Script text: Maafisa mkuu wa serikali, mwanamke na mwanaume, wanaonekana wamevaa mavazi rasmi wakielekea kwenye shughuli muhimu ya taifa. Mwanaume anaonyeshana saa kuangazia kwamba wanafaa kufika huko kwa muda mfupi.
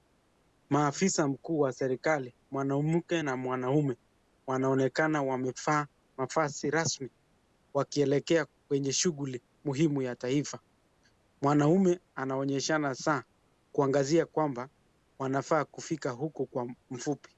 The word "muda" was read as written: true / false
false